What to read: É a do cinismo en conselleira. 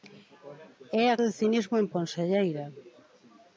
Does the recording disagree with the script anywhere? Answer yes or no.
no